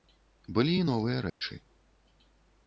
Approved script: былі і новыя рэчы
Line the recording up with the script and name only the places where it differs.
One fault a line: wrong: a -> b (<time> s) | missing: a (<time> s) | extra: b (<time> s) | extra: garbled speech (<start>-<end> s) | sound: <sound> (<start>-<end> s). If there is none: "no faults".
sound: dropout (1.3-1.4 s)